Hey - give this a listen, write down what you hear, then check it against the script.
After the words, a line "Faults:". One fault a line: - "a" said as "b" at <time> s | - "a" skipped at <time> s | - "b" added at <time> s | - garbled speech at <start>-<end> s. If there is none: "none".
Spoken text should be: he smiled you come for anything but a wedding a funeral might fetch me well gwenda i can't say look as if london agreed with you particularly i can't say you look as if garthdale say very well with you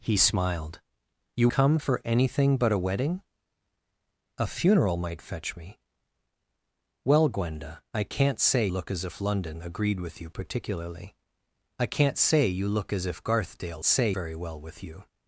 he smiled you come for anything but a wedding a funeral might fetch me well gwenda i can't say look as if london agreed with you particularly i can't say you look as if garthdale say very well with you
Faults:
none